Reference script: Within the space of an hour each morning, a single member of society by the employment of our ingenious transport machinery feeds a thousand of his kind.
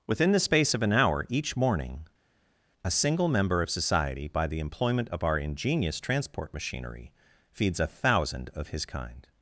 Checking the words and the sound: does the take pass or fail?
pass